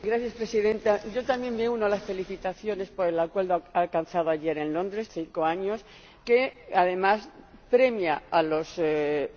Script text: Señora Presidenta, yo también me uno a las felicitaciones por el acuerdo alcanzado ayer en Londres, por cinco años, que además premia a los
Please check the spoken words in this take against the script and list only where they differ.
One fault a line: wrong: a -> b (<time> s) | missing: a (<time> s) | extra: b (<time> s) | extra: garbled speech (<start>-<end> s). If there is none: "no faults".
missing: por (5.1 s)